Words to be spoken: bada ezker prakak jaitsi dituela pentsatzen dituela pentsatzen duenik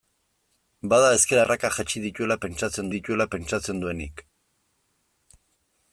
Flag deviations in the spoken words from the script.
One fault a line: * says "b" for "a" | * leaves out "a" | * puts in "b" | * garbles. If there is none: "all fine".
all fine